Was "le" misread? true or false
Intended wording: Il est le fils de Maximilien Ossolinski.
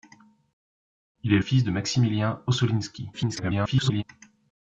true